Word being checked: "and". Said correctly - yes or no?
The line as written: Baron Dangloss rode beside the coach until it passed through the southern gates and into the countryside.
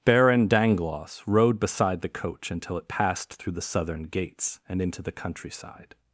yes